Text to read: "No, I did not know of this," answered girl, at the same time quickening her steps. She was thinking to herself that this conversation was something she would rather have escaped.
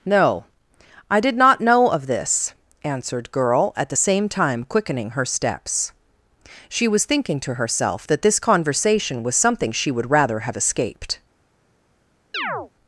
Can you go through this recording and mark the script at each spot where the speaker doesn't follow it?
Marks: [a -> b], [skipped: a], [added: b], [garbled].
"No, I did not know of this," answered girl, at the same time quickening her steps. She was thinking to herself that this conversation was something she would rather have escaped.